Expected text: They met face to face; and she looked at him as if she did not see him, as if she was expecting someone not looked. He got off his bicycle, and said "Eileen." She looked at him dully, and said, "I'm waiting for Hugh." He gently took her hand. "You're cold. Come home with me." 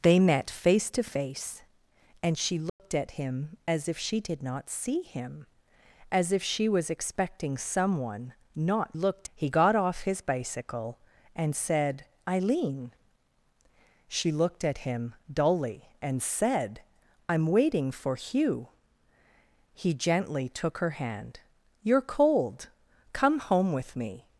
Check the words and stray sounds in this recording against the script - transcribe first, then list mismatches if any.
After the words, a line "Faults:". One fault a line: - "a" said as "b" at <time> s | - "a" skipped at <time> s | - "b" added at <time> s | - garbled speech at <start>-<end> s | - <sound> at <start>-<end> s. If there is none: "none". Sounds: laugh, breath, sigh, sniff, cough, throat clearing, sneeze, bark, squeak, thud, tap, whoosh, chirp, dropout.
They met face to face; and she looked at him as if she did not see him, as if she was expecting someone not looked. He got off his bicycle, and said "Eileen." She looked at him dully, and said, "I'm waiting for Hugh." He gently took her hand. "You're cold. Come home with me."
Faults:
- dropout at 2.7-2.8 s